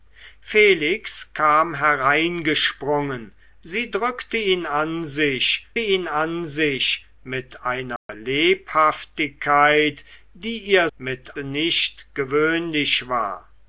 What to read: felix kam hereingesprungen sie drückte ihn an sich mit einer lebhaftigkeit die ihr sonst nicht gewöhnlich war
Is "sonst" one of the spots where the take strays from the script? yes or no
yes